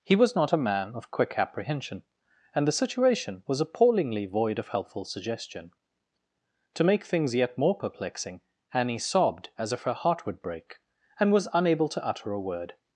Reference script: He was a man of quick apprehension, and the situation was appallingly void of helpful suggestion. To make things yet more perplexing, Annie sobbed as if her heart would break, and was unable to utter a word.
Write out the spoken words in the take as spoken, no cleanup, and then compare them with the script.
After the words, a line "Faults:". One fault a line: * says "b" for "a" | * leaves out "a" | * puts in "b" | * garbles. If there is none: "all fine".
He was not a man of quick apprehension, and the situation was appallingly void of helpful suggestion. To make things yet more perplexing, Annie sobbed as if her heart would break, and was unable to utter a word.
Faults:
* puts in "not"